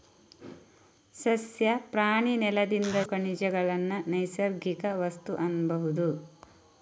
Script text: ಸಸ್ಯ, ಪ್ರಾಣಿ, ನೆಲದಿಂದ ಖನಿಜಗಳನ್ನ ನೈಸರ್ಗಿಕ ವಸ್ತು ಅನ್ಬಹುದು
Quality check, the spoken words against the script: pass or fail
pass